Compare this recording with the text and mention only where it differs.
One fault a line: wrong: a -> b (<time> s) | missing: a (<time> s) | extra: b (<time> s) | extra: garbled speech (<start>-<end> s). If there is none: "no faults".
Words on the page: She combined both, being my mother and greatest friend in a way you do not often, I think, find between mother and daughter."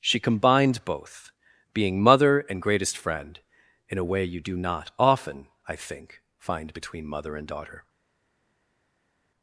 missing: my (2.0 s)